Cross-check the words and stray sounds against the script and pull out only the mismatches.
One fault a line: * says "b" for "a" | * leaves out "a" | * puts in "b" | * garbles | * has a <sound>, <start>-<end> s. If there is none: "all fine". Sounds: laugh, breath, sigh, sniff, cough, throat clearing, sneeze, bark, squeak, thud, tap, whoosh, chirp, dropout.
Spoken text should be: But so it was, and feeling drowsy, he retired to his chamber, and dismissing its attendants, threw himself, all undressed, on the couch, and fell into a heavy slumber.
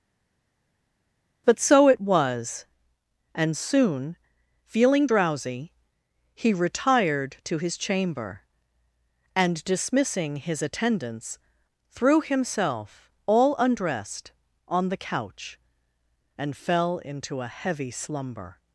* puts in "soon"
* says "his" for "its"